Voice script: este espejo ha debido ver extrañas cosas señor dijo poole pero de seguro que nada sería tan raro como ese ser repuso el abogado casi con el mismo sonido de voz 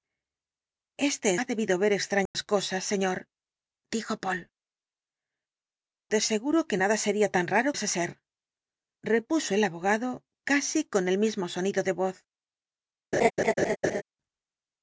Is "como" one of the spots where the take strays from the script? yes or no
yes